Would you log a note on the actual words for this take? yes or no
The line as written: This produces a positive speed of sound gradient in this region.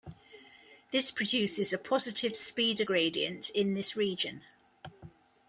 yes